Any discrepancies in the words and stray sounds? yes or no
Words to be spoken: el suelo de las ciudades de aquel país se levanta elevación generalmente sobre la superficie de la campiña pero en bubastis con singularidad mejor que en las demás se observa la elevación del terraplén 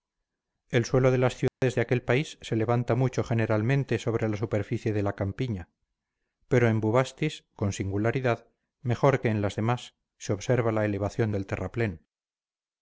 yes